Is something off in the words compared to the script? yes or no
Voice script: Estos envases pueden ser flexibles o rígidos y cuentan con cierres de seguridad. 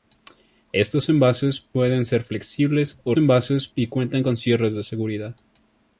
yes